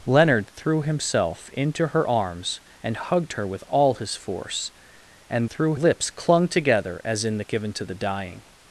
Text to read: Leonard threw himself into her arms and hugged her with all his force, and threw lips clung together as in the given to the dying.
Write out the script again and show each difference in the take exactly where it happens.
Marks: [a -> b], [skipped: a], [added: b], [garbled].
Leonard threw himself into her arms and hugged her with all his force, and threw lips clung together as in the given to the dying.